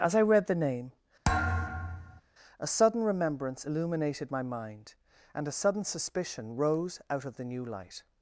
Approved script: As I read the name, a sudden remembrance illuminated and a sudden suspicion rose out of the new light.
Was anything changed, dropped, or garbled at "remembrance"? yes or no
no